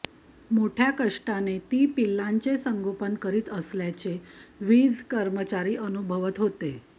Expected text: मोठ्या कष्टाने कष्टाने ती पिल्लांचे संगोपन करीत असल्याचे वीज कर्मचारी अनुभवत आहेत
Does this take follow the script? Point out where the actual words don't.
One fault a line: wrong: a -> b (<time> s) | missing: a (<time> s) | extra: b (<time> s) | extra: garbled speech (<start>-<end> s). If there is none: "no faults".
missing: कष्टाने (1.6 s)
wrong: आहेत -> होते (6.4 s)